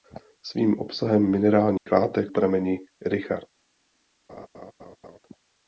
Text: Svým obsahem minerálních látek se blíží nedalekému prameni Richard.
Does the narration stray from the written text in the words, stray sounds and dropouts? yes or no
yes